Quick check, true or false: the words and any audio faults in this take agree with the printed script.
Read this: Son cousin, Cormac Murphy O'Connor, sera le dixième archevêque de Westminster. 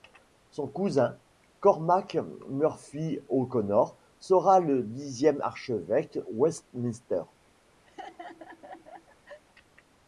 false